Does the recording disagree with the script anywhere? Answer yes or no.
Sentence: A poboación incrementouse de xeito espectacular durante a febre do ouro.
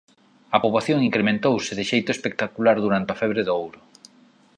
no